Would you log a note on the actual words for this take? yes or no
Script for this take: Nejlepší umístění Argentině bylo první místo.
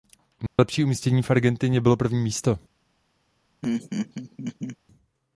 yes